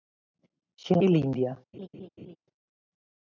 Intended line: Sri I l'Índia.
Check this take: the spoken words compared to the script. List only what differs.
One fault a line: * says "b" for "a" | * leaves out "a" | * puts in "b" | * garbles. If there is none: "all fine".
all fine